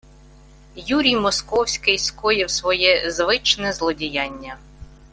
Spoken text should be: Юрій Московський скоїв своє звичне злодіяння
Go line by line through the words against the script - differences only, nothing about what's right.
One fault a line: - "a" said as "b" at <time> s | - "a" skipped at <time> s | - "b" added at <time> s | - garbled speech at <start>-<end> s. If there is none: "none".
none